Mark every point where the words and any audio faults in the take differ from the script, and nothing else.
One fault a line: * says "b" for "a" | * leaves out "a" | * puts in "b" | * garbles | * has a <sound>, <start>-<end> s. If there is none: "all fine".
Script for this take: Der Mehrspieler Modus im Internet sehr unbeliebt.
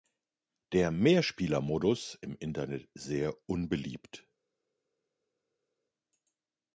all fine